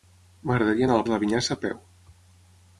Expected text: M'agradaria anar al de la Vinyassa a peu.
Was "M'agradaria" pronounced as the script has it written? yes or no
yes